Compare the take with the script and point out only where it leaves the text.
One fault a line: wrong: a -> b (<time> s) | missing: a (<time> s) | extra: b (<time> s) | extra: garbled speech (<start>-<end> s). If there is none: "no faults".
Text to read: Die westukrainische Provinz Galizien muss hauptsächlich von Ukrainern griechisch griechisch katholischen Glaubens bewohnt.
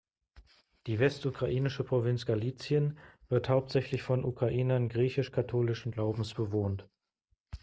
wrong: muss -> wird (3.3 s)
missing: griechisch (5.3 s)